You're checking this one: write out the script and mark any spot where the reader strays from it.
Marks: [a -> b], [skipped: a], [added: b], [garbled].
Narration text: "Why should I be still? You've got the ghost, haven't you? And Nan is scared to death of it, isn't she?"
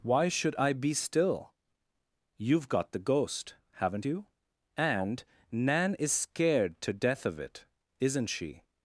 "Why should I be still? You've got the ghost, haven't you? And Nan is scared to death of it, isn't she?"